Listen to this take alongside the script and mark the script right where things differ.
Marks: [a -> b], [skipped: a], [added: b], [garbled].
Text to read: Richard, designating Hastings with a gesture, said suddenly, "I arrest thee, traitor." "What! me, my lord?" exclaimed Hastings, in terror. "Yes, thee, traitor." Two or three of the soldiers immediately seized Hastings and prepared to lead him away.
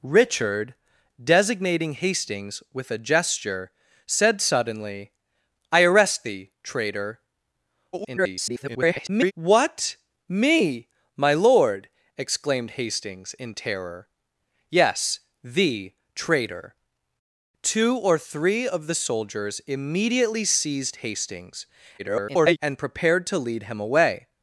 Richard, designating Hastings with a gesture, said suddenly, "I arrest thee, traitor." [garbled] "What! me, my lord?" exclaimed Hastings, in terror. "Yes, thee, traitor." Two or three of the soldiers immediately seized Hastings [garbled] and prepared to lead him away.